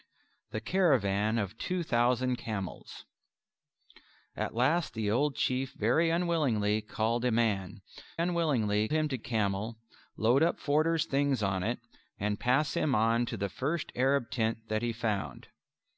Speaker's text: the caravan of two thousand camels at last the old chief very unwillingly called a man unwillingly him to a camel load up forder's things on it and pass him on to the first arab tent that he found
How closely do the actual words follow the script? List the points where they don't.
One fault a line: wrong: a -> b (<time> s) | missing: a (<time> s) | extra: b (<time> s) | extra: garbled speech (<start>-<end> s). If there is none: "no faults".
no faults